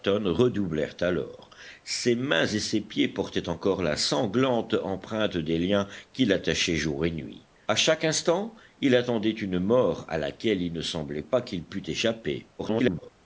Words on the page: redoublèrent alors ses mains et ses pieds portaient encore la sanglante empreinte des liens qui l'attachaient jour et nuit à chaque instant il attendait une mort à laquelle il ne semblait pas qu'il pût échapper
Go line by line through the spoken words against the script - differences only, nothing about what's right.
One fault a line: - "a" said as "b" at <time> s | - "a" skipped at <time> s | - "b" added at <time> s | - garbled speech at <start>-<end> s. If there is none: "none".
- garbled speech at 12.6-13.1 s